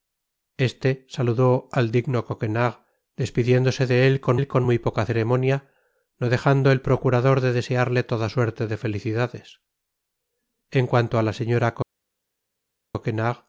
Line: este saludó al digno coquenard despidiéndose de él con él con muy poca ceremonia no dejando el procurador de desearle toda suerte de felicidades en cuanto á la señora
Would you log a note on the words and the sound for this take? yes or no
no